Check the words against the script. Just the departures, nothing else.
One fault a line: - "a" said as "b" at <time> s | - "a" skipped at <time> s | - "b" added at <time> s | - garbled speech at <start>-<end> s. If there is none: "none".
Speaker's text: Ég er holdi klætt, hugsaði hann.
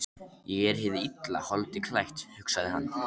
- "hið illa" added at 0.8 s